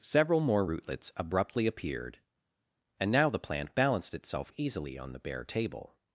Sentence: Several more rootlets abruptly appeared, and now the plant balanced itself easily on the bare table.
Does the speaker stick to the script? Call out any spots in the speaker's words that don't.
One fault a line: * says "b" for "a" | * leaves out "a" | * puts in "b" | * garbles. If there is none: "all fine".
all fine